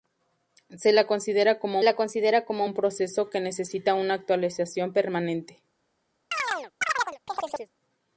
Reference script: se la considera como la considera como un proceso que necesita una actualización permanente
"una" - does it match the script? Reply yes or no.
yes